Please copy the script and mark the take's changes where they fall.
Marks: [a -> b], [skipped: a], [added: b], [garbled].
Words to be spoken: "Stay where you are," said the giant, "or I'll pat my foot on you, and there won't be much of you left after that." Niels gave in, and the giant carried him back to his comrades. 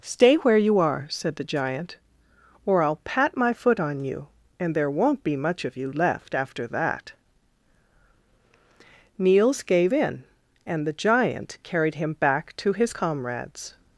"Stay where you are," said the giant, "or I'll pat my foot on you, and there won't be much of you left after that." Niels gave in, and the giant carried him back to his comrades.